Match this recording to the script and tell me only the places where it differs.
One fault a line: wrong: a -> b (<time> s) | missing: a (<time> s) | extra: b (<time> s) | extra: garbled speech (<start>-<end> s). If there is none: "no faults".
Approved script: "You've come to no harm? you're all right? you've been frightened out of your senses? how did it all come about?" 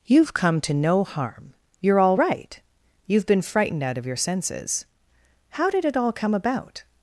no faults